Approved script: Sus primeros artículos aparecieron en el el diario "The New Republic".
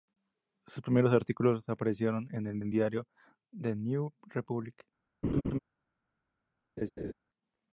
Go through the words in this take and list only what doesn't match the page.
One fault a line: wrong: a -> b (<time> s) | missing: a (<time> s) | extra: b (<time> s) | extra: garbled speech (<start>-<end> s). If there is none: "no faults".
no faults